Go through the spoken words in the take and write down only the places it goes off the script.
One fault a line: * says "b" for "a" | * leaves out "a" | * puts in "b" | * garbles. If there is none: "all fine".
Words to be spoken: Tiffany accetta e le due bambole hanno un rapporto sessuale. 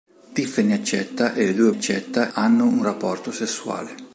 * says "accetta" for "bambole"